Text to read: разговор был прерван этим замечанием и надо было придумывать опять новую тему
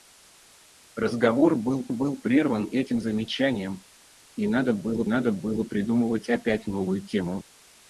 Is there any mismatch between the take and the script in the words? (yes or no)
yes